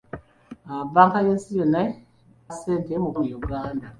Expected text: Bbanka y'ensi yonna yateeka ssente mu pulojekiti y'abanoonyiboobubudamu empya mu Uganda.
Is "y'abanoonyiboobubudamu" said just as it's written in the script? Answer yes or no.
no